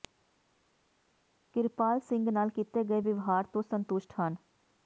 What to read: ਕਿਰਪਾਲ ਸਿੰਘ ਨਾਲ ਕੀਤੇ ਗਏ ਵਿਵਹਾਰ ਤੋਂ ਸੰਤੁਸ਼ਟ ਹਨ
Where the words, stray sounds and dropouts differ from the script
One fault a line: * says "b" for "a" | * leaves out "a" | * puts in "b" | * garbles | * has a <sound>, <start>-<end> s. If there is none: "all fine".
all fine